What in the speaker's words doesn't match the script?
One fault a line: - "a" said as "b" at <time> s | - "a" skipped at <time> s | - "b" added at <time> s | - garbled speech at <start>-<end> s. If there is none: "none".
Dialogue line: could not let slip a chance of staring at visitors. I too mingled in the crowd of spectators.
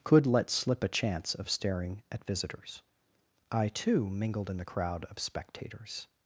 - "not" skipped at 0.2 s